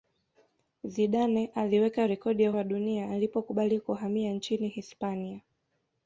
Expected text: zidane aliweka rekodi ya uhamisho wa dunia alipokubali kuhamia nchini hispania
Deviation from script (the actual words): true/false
true